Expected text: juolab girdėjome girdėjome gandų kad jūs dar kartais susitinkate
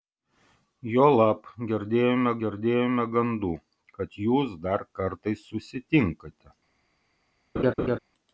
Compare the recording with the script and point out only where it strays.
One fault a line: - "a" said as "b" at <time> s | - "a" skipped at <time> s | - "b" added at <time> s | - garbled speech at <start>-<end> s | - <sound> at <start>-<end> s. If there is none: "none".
- laugh at 7.6-8.0 s